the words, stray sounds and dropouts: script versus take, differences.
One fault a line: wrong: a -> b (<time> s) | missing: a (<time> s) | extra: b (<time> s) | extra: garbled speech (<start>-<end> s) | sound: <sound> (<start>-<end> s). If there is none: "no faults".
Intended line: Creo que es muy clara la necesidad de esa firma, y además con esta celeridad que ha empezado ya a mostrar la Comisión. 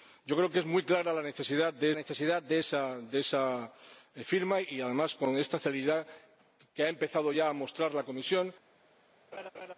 extra: necesidad de (1.9 s)
sound: laugh (9.3-9.7 s)